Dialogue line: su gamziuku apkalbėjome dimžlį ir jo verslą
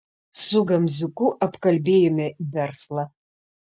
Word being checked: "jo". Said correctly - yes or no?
no